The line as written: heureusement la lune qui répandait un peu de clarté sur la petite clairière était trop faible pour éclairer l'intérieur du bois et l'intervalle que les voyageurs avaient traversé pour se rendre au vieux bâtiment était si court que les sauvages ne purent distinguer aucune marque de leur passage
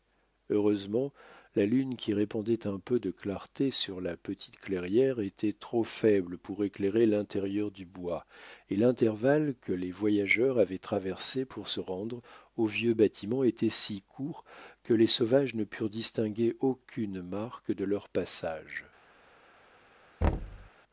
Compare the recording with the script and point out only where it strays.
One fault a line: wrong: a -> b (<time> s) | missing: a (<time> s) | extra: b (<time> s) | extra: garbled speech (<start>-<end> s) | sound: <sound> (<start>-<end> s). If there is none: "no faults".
sound: thud (20.2-20.7 s)